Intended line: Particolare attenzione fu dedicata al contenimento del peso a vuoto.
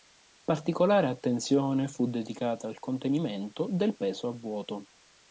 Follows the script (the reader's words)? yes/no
yes